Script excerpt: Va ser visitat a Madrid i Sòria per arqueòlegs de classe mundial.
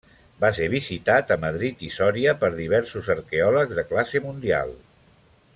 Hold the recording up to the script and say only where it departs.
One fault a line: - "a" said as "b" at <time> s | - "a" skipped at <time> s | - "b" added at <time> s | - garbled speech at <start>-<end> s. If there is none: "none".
- "diversos" added at 2.6 s